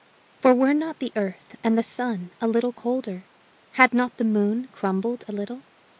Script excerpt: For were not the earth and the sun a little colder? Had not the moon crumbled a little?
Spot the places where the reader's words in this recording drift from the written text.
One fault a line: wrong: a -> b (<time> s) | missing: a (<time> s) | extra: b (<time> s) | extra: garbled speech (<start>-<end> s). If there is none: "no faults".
no faults